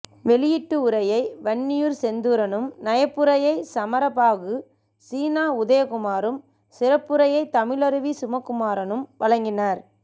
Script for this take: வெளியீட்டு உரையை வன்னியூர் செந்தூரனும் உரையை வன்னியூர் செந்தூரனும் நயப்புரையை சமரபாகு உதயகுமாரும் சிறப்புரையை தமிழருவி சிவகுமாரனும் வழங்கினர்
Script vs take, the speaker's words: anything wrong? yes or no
yes